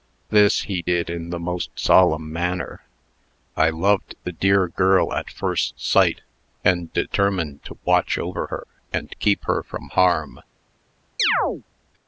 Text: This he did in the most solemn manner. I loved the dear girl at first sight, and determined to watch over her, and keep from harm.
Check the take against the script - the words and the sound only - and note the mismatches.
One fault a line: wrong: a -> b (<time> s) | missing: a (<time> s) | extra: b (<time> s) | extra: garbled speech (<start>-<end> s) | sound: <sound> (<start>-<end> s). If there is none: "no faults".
extra: her (9.4 s)
sound: chirp (11.2-11.6 s)